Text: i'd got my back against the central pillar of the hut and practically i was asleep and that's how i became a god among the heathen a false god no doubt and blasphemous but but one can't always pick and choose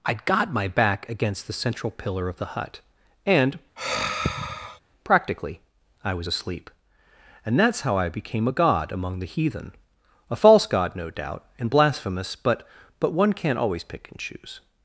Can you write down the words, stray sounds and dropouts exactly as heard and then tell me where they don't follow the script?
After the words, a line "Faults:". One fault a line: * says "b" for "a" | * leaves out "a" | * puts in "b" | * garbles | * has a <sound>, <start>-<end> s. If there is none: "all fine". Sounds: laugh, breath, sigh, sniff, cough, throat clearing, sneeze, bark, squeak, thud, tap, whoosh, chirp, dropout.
i'd got my back against the central pillar of the hut and practically i was asleep and that's how i became a god among the heathen a false god no doubt and blasphemous but but one can't always pick and choose
Faults:
* has a sigh, 3.8-4.8 s